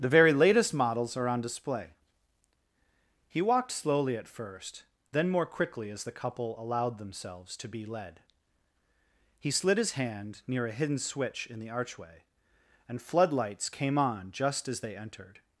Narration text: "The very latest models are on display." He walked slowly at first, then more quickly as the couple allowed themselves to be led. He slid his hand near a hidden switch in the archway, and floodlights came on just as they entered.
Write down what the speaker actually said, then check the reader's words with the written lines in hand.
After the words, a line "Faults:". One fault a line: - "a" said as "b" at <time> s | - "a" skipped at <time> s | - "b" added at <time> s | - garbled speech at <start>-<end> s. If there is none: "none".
"The very latest models are on display." He walked slowly at first, then more quickly as the couple allowed themselves to be led. He slid his hand near a hidden switch in the archway, and floodlights came on just as they entered.
Faults:
none